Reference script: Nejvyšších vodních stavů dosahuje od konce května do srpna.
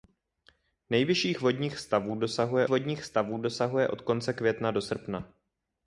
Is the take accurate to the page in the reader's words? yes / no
no